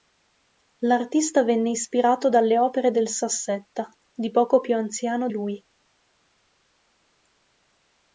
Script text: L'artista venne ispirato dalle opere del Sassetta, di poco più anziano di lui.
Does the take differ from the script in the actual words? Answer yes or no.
yes